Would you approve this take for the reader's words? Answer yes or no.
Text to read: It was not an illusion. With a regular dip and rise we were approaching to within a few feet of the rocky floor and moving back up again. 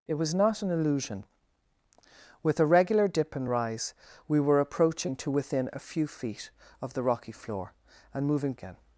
no